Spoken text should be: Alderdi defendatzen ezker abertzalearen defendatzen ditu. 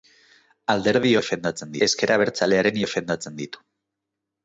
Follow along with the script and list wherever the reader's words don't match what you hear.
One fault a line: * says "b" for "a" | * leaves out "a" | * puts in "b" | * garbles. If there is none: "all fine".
all fine